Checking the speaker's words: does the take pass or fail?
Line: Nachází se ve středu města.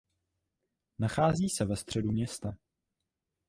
pass